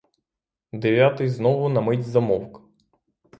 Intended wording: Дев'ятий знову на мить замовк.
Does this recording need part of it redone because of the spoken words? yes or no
no